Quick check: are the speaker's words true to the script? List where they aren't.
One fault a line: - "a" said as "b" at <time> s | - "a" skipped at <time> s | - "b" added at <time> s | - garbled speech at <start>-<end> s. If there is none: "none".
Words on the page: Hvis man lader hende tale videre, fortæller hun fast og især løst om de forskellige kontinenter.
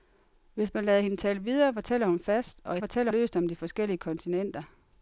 - "især" said as "fortæller" at 2.8 s